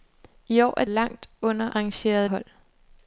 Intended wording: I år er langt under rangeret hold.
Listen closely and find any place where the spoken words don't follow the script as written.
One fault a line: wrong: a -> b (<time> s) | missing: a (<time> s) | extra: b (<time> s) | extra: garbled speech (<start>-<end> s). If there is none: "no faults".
no faults